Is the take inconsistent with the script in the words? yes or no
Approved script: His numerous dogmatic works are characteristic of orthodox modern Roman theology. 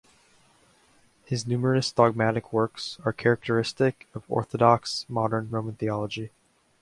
no